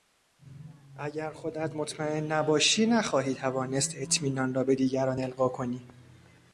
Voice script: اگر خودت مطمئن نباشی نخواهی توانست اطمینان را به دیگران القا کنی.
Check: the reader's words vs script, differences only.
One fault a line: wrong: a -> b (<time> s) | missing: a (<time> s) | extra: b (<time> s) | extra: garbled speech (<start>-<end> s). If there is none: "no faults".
no faults